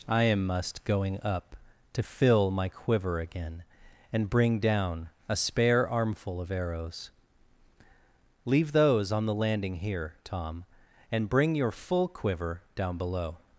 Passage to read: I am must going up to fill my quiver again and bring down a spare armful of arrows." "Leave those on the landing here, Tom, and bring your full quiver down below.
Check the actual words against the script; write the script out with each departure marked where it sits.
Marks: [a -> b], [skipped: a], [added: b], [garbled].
I am must going up to fill my quiver again and bring down a spare armful of arrows." "Leave those on the landing here, Tom, and bring your full quiver down below.